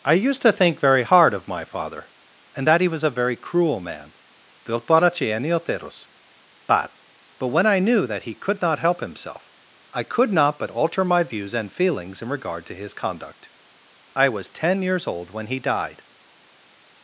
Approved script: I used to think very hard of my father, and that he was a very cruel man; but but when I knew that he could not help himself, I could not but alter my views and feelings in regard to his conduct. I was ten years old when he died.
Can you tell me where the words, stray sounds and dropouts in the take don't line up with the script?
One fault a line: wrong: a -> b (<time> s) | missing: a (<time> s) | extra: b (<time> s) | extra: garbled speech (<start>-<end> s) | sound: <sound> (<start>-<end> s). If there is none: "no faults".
no faults